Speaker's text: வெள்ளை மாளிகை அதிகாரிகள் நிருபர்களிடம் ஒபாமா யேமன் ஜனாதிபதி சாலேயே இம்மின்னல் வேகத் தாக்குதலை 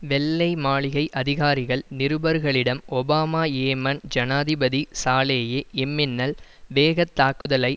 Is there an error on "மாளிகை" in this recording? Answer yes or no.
no